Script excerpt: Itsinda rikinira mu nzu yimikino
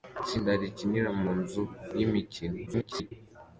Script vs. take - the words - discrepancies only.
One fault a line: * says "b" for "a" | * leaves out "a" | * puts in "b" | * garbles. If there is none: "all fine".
* garbles